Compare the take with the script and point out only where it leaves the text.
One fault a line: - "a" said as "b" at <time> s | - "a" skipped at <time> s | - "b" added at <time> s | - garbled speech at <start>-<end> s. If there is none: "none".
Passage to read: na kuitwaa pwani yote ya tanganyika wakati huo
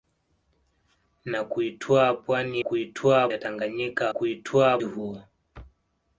- "yote" said as "kuitwaa" at 2.6 s
- "wakati" said as "kuitwaa" at 4.1 s